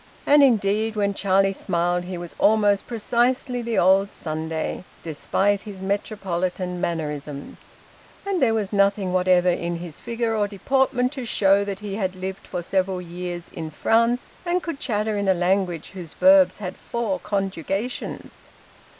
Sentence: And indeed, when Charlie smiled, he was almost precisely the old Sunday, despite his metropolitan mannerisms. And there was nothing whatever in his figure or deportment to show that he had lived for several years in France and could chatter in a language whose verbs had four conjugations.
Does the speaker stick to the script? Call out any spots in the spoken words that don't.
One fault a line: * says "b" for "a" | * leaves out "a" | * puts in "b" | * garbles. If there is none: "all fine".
all fine